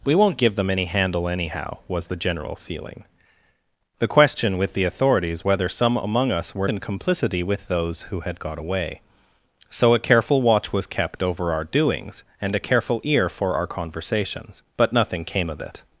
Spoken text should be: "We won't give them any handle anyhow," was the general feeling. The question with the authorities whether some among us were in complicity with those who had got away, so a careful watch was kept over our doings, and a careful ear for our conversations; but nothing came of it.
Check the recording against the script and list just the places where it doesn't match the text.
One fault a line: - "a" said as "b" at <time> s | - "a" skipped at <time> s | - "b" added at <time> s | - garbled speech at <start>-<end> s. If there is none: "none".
none